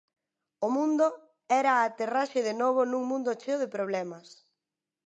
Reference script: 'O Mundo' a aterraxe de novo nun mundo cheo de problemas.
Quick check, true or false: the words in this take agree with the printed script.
false